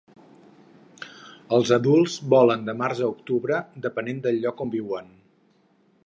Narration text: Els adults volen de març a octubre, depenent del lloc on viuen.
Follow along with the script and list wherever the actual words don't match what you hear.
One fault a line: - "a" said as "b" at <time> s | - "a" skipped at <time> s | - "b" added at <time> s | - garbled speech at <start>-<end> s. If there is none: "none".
none